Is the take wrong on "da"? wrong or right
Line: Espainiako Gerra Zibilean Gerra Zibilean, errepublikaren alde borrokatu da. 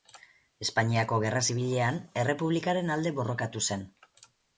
wrong